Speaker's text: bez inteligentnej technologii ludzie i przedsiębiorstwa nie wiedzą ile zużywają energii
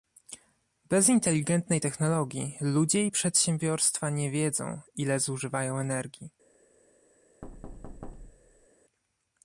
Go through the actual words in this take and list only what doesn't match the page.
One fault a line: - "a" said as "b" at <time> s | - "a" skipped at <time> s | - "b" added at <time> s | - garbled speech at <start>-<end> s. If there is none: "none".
none